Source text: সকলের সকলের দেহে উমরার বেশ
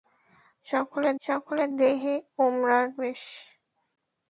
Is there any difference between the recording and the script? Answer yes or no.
no